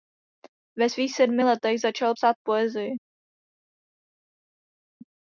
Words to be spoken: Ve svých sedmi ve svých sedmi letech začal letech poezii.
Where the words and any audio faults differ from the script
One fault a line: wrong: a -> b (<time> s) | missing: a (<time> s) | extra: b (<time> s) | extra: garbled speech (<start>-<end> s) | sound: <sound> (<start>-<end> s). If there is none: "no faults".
missing: ve svých sedmi (1.4 s)
wrong: letech -> psát (2.1 s)